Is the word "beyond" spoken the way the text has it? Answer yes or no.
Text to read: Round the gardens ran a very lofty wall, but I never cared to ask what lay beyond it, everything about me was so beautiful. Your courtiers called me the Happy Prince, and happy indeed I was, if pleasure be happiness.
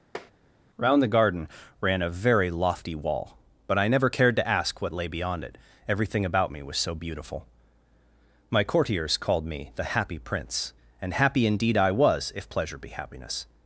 yes